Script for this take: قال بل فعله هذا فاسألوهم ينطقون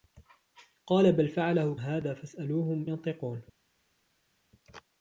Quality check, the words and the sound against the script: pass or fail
pass